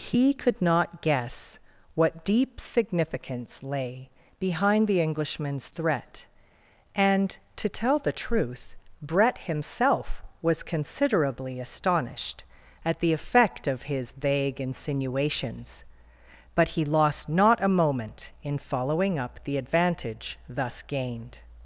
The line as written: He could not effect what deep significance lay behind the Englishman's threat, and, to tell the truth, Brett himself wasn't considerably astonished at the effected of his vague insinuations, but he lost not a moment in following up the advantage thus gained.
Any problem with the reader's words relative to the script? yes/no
yes